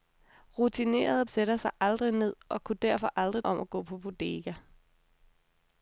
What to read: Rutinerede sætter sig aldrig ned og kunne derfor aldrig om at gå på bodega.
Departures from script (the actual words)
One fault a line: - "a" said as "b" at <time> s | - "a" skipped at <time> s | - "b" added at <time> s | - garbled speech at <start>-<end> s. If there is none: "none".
none